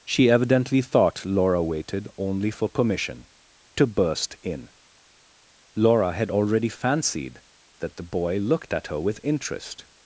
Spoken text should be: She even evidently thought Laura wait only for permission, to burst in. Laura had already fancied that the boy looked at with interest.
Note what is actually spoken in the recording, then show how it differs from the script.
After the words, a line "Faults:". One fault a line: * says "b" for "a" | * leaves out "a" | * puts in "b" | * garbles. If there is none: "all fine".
She evidently thought Laura waited only for permission, to burst in. Laura had already fancied that the boy looked at her with interest.
Faults:
* leaves out "even"
* says "waited" for "wait"
* puts in "her"